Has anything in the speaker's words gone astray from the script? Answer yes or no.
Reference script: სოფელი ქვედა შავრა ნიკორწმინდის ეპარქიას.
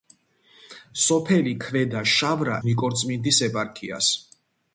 no